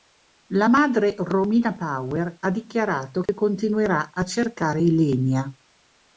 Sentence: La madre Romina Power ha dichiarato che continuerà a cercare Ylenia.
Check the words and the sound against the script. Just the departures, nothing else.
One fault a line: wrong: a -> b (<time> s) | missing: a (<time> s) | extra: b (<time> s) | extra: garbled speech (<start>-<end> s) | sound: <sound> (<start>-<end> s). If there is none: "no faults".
sound: dropout (3.3-3.3 s)